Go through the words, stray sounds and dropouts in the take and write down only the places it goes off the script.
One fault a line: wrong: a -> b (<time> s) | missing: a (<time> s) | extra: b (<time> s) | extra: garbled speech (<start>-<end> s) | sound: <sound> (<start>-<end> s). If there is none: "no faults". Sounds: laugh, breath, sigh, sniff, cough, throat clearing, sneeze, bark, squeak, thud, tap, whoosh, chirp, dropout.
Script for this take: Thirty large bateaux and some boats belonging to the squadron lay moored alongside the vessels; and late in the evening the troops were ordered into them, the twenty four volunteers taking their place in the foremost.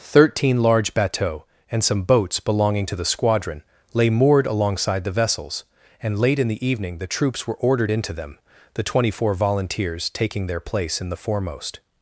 wrong: Thirty -> Thirteen (0.0 s)